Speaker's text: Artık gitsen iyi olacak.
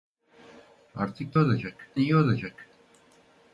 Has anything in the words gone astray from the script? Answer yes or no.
yes